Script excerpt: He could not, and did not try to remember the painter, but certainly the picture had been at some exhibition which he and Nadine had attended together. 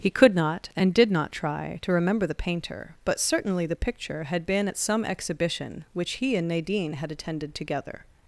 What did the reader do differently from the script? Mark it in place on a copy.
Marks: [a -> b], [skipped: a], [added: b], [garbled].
He could not, and did not try to remember the painter, but certainly the picture had been at some exhibition which he and Nadine had attended together.